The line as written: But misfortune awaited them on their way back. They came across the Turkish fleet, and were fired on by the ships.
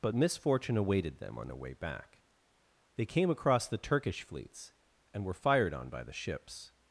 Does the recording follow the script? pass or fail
fail